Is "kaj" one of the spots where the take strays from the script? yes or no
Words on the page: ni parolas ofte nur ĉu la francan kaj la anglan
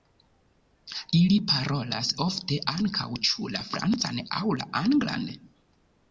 yes